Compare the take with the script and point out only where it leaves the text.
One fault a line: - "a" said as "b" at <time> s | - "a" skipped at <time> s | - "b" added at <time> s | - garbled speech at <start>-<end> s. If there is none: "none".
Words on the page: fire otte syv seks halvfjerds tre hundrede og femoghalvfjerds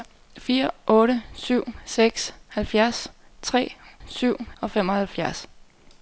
- "hundrede" said as "syv" at 4.1 s